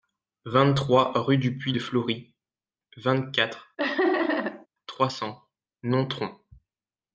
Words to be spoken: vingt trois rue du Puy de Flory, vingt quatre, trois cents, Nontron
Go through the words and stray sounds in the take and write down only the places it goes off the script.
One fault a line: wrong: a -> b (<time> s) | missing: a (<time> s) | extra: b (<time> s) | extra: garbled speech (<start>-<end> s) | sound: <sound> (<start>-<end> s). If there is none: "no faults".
sound: laugh (3.8-4.7 s)